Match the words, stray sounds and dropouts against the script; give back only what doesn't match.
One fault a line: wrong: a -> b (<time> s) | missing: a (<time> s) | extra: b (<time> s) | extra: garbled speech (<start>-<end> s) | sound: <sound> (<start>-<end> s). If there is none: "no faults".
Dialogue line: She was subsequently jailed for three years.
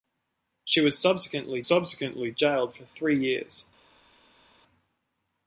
extra: subsequently (1.6 s)